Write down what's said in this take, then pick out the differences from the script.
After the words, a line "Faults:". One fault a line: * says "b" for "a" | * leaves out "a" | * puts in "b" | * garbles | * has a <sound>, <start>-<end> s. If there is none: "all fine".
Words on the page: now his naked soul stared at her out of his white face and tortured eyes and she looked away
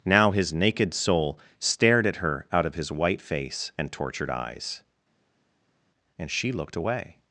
now his naked soul stared at her out of his white face and tortured eyes and she looked away
Faults:
all fine